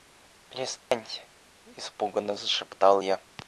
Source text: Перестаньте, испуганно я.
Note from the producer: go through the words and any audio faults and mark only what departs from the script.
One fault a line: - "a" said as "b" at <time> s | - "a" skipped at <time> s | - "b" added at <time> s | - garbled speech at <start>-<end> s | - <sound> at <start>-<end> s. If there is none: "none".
- dropout at 0.8-0.9 s
- "зашептал" added at 2.3 s